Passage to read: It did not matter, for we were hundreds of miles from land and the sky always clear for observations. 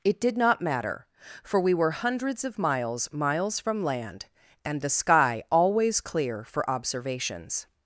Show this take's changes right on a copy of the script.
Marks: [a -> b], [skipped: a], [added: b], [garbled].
It did not matter, for we were hundreds of miles [added: miles] from land and the sky always clear for observations.